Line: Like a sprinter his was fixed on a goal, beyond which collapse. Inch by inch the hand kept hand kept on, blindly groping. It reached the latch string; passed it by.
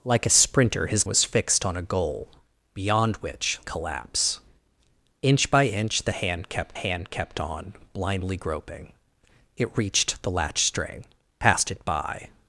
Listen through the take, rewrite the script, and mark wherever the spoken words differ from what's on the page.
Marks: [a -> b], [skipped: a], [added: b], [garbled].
Like a sprinter his was fixed on a goal, beyond which collapse. Inch by inch the hand kept hand kept on, blindly groping. It reached the latch string; passed it by.